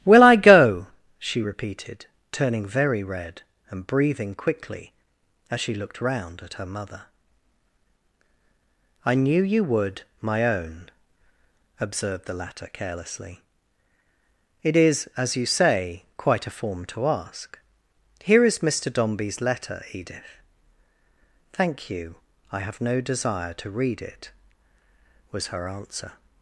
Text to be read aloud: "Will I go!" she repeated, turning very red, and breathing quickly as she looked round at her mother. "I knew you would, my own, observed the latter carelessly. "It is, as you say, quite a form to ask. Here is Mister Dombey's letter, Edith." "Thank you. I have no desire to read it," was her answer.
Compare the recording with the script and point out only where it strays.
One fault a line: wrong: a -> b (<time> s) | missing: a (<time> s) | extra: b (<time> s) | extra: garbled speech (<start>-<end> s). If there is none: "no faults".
no faults